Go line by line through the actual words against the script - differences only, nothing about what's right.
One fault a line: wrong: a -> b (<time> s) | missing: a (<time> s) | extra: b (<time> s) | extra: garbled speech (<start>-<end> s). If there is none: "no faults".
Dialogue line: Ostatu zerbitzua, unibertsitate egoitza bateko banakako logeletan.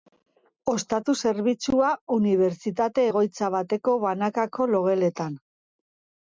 no faults